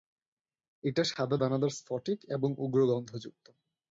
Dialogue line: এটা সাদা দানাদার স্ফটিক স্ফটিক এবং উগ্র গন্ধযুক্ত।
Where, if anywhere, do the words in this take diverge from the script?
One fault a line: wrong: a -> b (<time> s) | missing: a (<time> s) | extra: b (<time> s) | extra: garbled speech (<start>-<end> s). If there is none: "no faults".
missing: স্ফটিক (2.2 s)